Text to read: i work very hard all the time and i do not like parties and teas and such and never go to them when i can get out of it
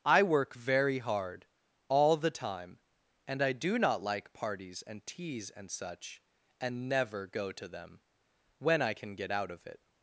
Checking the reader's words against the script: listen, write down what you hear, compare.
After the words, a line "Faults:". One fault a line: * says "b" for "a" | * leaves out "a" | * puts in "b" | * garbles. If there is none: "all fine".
i work very hard all the time and i do not like parties and teas and such and never go to them when i can get out of it
Faults:
all fine